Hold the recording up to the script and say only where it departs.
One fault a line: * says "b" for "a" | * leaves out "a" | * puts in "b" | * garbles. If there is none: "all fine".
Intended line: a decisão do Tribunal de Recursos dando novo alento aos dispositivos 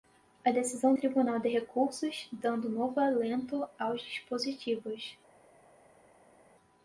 * leaves out "do"